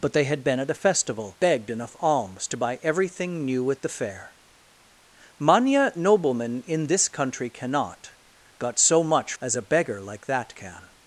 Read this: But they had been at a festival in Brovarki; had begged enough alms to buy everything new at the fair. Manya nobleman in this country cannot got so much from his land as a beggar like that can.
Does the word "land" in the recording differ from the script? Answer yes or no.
yes